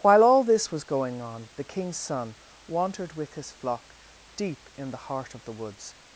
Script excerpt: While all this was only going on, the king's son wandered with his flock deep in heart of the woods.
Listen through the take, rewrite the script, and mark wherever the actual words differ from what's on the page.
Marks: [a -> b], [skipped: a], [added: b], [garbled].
While all this was [skipped: only] going on, the king's son wandered with his flock deep in [added: the] heart of the woods.